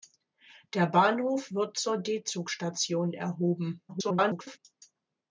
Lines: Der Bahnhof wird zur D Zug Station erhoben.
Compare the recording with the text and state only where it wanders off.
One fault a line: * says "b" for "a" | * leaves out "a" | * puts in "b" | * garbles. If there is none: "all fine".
* garbles